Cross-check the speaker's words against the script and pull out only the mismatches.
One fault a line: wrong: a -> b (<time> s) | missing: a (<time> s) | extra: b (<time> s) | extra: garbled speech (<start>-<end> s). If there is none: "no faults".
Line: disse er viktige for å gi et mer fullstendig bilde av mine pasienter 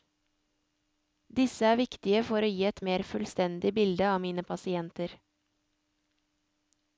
no faults